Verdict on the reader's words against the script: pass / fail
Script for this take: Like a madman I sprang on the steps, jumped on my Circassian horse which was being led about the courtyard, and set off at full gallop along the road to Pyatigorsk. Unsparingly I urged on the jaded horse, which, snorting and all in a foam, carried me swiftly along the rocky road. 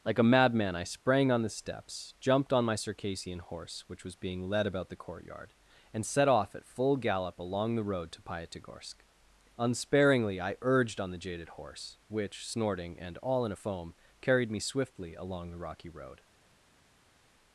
pass